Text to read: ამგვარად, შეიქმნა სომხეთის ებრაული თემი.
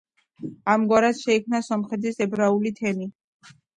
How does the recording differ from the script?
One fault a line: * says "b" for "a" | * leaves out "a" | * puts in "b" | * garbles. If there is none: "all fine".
all fine